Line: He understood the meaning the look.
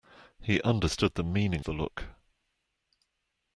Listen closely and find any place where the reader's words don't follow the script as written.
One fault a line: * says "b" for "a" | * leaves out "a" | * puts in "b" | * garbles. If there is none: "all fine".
all fine